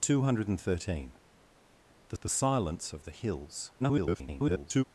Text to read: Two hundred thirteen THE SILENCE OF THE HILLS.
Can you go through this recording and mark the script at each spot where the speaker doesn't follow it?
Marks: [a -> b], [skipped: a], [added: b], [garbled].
Two hundred thirteen THE [added: THE] SILENCE OF THE HILLS. [garbled]